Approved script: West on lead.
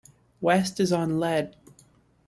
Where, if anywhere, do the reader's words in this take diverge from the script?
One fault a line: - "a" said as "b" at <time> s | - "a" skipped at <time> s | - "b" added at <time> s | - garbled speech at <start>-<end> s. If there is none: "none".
- "is" added at 0.8 s